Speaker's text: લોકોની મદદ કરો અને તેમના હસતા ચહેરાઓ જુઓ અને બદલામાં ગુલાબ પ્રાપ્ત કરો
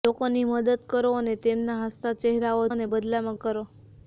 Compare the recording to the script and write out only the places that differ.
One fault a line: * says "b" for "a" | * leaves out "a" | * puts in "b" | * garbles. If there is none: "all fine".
* leaves out "જુઓ"
* leaves out "ગુલાબ પ્રાપ્ત"